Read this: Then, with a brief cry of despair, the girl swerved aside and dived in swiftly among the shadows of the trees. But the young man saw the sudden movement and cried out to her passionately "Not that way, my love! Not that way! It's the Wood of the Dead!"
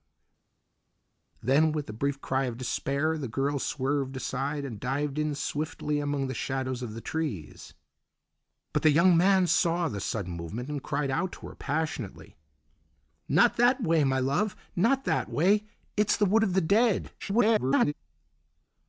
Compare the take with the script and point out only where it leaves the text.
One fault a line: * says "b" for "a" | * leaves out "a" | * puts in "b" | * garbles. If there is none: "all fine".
* garbles